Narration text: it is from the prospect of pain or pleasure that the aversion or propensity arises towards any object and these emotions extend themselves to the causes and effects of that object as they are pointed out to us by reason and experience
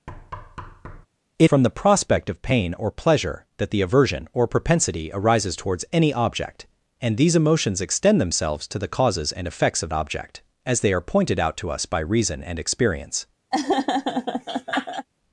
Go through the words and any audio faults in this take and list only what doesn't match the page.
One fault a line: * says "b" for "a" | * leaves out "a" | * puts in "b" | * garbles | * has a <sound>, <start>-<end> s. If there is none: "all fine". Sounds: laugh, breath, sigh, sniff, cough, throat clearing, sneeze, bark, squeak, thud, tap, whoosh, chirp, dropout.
* has a thud, 0.1-1.1 s
* leaves out "is"
* leaves out "that"
* has a laugh, 13.5-15.1 s